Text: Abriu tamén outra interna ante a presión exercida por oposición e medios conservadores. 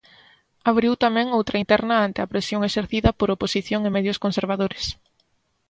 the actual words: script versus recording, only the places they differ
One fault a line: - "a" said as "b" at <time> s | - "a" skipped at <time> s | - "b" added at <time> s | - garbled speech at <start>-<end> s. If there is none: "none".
none